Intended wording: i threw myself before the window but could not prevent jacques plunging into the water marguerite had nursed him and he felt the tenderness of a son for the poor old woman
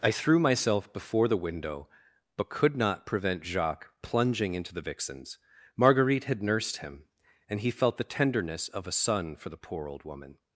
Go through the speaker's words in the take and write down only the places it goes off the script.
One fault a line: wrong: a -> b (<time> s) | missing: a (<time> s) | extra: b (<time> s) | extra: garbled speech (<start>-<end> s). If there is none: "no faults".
wrong: water -> vixens (4.8 s)